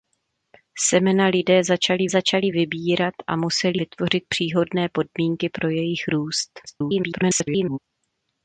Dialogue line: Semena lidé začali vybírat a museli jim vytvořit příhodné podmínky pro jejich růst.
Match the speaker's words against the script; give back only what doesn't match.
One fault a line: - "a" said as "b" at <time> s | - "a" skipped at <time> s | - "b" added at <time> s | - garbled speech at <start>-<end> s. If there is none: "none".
- "začali" added at 2.1 s
- "jim" skipped at 3.8 s
- garbled speech at 6.7-7.8 s